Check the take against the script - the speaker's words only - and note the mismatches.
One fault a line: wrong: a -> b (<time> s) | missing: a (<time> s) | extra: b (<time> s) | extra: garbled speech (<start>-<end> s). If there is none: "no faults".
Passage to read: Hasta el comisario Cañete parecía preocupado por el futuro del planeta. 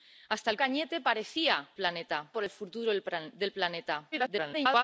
missing: comisario (0.6 s)
wrong: preocupado -> planeta (1.7 s)
extra: garbled speech (4.1-4.8 s)